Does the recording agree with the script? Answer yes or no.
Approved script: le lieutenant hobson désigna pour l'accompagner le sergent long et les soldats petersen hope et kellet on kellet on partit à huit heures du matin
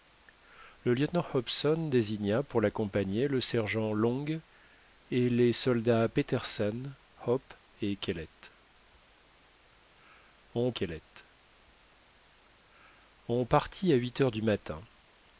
yes